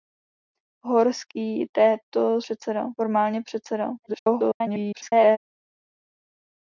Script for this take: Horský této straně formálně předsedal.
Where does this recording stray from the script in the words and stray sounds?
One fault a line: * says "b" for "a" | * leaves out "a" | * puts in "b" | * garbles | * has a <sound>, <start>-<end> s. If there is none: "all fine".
* says "předsedal" for "straně"
* garbles